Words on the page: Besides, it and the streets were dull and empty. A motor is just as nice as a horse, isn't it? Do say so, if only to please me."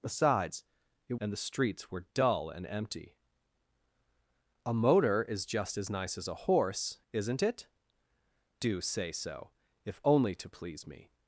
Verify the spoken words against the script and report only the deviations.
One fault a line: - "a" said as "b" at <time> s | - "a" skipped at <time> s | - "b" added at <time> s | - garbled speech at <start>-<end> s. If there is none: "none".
none